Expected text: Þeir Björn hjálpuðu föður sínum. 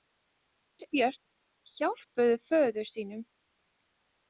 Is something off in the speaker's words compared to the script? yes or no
no